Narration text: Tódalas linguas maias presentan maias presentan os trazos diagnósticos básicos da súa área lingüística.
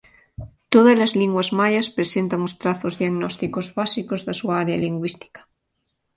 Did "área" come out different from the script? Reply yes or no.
no